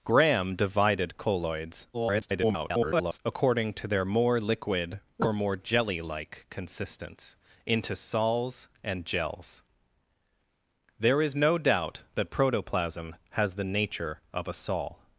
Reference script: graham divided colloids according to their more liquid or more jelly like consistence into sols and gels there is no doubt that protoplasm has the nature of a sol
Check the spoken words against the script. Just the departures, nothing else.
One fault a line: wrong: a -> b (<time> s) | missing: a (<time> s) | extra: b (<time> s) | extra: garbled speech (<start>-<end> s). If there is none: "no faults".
extra: garbled speech (1.9-3.2 s)